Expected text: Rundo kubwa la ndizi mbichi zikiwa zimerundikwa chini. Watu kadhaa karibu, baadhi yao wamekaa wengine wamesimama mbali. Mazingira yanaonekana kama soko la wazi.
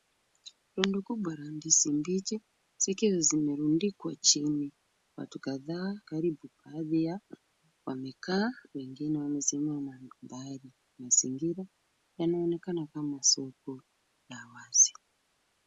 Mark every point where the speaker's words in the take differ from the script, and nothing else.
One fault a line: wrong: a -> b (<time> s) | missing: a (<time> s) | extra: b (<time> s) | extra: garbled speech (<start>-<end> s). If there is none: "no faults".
no faults